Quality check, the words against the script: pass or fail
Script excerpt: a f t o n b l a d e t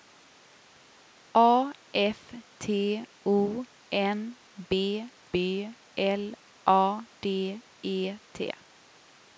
fail